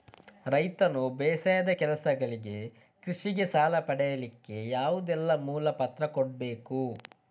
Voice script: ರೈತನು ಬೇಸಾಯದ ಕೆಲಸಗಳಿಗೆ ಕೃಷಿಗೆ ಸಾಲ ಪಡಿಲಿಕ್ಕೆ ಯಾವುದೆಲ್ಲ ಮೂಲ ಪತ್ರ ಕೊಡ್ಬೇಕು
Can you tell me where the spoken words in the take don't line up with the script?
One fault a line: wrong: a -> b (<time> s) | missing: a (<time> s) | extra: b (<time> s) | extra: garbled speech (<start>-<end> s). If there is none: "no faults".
no faults